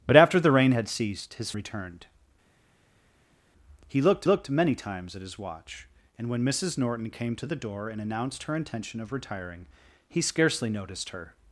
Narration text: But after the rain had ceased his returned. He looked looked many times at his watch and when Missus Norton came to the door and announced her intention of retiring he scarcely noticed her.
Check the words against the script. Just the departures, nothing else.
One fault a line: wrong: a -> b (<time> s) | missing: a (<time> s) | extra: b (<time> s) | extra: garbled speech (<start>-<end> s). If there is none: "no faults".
no faults